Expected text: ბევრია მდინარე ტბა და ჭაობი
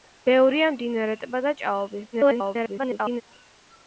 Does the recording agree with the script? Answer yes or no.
no